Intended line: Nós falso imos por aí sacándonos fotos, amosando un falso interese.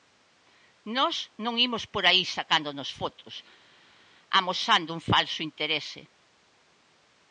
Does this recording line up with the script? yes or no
no